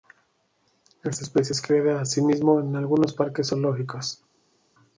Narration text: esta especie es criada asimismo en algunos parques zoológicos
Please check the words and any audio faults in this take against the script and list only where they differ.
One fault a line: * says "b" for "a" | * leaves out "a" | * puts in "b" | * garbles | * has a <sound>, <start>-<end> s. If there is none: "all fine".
all fine